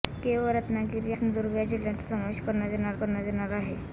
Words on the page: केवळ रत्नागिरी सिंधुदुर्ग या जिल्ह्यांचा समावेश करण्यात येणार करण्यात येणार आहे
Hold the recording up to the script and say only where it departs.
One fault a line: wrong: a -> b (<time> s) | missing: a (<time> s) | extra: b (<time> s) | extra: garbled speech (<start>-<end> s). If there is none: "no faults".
no faults